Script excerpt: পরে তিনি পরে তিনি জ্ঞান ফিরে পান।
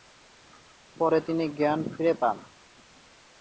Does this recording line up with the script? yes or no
no